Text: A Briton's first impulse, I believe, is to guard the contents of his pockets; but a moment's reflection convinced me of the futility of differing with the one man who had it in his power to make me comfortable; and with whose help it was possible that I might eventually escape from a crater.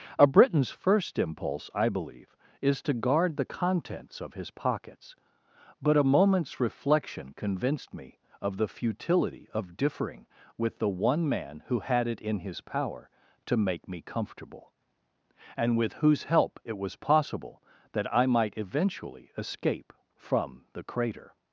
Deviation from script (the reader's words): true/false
true